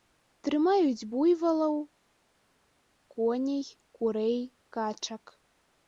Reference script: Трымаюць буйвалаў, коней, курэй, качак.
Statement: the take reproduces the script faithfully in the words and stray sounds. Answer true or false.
true